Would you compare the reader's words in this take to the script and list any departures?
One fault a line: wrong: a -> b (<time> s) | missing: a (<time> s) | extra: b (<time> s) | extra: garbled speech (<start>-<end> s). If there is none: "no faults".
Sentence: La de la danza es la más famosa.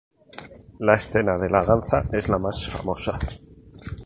extra: escena (0.9 s)